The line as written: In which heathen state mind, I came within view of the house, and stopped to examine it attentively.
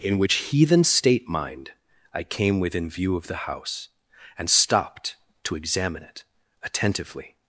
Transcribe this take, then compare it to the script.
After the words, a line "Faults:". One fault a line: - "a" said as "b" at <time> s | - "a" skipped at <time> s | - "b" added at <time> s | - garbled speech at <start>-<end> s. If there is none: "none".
In which heathen state mind, I came within view of the house, and stopped to examine it attentively.
Faults:
none